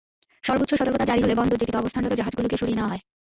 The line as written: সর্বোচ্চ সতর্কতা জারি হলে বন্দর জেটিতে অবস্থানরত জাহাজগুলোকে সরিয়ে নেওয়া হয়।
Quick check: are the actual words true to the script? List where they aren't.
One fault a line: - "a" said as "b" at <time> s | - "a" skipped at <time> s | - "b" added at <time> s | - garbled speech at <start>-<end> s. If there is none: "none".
none